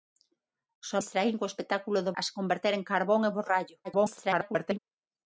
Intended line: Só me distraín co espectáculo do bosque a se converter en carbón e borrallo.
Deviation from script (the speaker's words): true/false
true